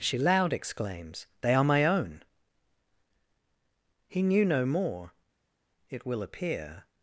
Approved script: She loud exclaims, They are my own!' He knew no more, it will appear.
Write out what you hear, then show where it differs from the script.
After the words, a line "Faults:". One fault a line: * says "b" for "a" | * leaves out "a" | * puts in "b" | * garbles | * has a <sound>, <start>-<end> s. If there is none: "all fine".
She loud exclaims, They are my own!' He knew no more, it will appear.
Faults:
all fine